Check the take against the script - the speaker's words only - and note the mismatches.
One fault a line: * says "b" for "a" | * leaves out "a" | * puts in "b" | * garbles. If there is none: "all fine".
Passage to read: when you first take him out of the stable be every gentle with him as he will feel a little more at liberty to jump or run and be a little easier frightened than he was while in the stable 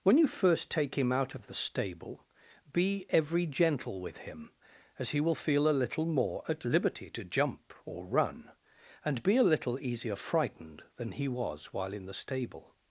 all fine